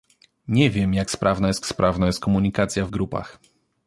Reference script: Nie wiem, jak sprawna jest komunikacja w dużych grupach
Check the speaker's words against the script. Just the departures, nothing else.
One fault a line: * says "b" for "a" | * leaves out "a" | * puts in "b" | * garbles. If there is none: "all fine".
* puts in "sprawna jest"
* leaves out "dużych"